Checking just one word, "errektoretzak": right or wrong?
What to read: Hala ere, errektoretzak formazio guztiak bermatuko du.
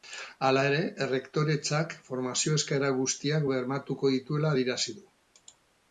right